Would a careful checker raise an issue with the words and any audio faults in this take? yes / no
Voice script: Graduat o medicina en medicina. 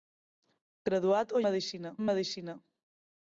no